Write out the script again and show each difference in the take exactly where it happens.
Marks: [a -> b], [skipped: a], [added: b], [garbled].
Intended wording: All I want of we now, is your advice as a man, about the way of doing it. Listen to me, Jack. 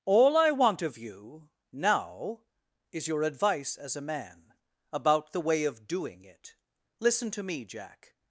All I want of [we -> you] now, is your advice as a man, about the way of doing it. Listen to me, Jack.